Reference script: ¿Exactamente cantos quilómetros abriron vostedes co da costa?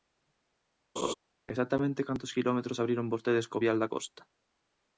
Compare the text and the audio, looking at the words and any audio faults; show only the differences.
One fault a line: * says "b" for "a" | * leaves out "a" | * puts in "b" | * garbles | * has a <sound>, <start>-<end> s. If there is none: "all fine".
* has a laugh, 1.0-1.1 s
* puts in "vial"